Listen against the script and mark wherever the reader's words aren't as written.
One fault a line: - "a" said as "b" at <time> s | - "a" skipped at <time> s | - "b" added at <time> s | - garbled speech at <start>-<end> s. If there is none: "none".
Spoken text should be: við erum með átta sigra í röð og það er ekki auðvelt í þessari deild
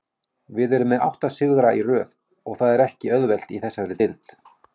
none